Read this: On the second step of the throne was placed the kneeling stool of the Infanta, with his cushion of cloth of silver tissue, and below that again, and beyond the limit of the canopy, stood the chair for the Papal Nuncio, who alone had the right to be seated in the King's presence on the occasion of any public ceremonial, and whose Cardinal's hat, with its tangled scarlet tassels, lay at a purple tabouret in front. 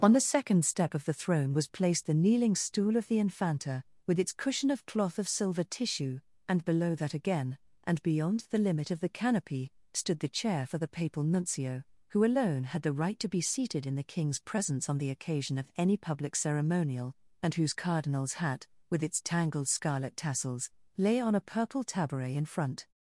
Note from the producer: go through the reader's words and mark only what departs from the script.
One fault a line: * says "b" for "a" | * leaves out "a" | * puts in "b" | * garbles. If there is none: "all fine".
* says "its" for "his"
* says "on" for "at"